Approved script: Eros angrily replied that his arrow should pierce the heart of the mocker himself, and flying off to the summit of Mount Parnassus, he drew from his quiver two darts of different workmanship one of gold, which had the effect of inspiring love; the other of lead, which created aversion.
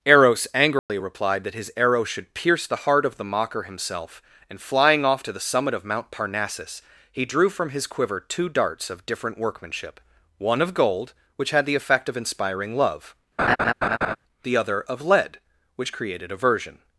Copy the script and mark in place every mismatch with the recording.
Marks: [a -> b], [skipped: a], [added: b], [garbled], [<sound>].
Eros angrily [dropout] replied that his arrow should pierce the heart of the mocker himself, and flying off to the summit of Mount Parnassus, he drew from his quiver two darts of different workmanship one of gold, which had the effect of inspiring love; [laugh] the other of lead, which created aversion.